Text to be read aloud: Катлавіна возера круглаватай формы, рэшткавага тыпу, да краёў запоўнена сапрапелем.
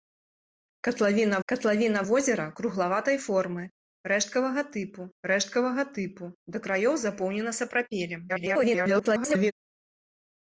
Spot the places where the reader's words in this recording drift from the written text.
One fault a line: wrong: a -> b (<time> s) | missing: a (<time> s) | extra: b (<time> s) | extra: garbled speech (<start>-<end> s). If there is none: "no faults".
extra: катлавіна (1.5 s)
extra: рэшткавага тыпу (5.3 s)
extra: garbled speech (8.3-9.5 s)